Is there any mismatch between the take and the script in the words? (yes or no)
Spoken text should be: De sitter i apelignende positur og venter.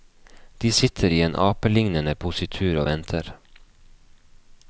yes